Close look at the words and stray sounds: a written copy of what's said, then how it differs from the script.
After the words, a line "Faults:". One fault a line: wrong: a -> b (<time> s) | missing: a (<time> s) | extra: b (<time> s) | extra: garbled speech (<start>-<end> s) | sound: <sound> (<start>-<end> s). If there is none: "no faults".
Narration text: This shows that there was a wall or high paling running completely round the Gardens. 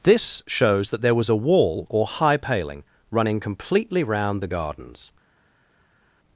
This shows that there was a wall or high paling running completely round the Gardens.
Faults:
no faults